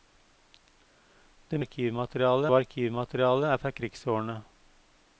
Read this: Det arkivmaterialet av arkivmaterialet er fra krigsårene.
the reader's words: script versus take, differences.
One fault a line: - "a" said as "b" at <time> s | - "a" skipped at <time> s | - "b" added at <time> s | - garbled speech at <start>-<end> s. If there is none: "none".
none